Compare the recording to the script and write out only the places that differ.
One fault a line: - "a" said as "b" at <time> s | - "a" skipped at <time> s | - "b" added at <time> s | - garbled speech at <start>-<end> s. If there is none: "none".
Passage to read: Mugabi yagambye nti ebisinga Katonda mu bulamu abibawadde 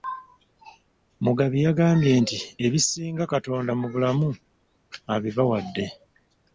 none